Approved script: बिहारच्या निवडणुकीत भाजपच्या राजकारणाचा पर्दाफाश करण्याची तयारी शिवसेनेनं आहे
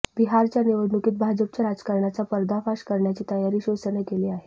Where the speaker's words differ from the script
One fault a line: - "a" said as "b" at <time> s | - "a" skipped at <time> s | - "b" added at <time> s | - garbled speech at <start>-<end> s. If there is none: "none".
- "केली" added at 4.0 s